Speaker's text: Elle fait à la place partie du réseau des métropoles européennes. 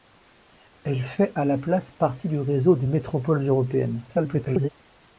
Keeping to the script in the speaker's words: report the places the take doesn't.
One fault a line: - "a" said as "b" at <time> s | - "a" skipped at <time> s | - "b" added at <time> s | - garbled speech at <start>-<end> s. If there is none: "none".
- garbled speech at 4.1-4.7 s